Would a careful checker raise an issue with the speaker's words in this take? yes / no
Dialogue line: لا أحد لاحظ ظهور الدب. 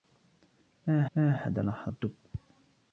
yes